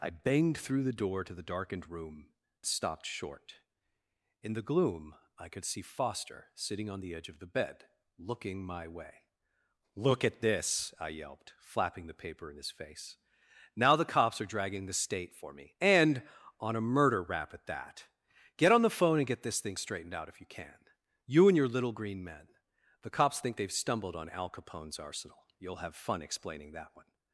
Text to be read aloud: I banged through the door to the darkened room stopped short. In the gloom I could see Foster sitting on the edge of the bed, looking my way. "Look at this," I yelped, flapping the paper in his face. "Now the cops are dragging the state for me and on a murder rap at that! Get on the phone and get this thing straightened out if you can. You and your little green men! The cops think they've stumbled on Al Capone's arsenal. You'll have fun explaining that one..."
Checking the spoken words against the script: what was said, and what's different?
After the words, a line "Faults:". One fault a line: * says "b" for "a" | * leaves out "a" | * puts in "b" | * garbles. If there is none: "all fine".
I banged through the door to the darkened room stopped short. In the gloom I could see Foster sitting on the edge of the bed, looking my way. "Look at this," I yelped, flapping the paper in his face. "Now the cops are dragging the state for me and on a murder rap at that! Get on the phone and get this thing straightened out if you can. You and your little green men! The cops think they've stumbled on Al Capone's arsenal. You'll have fun explaining that one..."
Faults:
all fine